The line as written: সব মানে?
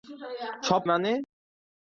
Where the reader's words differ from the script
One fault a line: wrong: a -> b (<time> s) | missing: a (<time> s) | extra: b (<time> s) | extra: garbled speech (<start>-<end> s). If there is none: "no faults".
no faults